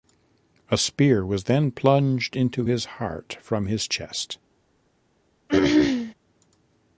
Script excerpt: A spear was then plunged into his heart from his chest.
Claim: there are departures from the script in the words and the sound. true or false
true